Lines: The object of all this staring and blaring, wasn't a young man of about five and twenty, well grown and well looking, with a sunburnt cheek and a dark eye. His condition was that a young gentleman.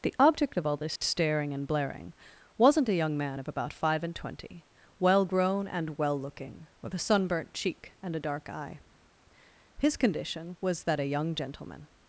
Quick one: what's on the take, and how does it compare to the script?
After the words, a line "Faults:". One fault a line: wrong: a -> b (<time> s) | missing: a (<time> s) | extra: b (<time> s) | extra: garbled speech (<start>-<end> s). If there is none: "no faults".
The object of all this staring and blaring, wasn't a young man of about five and twenty, well grown and well looking, with a sunburnt cheek and a dark eye. His condition was that a young gentleman.
Faults:
no faults